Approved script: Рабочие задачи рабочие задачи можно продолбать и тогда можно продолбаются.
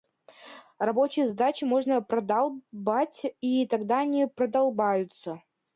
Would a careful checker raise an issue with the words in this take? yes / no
yes